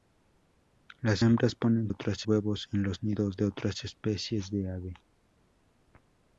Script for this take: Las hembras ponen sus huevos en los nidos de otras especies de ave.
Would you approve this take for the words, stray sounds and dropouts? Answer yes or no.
no